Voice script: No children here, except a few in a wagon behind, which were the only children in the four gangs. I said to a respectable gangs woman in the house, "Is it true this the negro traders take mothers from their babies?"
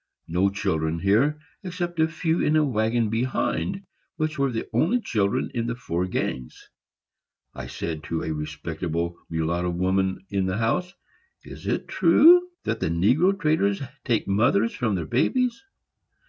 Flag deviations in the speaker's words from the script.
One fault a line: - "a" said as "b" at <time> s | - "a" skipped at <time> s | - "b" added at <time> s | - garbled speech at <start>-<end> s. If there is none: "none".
- "gangs" said as "mulatto" at 9.3 s
- "this" said as "that" at 12.6 s